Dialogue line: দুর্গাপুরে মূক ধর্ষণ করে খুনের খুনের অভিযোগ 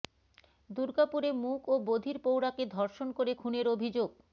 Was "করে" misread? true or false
false